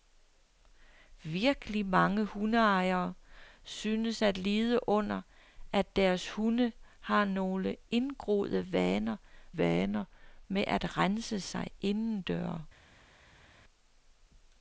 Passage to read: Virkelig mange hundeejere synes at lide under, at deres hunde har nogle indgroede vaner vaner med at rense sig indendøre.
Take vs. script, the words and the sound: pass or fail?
pass